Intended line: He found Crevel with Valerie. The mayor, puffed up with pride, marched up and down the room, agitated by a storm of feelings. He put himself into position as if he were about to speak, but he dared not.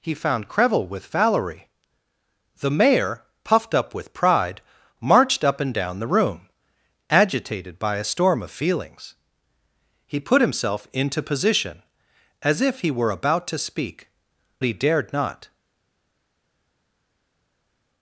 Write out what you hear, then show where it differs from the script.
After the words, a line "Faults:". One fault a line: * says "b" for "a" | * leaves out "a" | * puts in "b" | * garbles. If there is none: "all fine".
He found Crevel with Valerie. The mayor, puffed up with pride, marched up and down the room, agitated by a storm of feelings. He put himself into position as if he were about to speak, he dared not.
Faults:
* leaves out "but"